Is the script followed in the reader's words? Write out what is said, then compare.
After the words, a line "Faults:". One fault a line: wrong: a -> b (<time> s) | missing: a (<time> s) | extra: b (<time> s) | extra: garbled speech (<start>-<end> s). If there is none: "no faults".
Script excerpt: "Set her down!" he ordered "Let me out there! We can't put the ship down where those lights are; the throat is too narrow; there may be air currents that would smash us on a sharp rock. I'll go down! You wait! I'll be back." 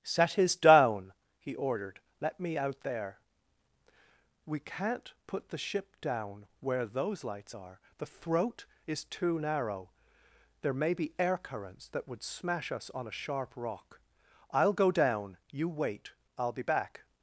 "Set his down!" he ordered "Let me out there! We can't put the ship down where those lights are; the throat is too narrow; there may be air currents that would smash us on a sharp rock. I'll go down! You wait! I'll be back."
Faults:
wrong: her -> his (0.3 s)